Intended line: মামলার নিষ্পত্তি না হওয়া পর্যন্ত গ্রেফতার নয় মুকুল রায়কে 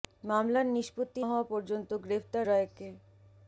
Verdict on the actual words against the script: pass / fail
fail